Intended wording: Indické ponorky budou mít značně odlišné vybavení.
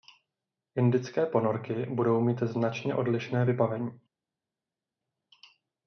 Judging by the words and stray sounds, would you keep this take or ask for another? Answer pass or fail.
pass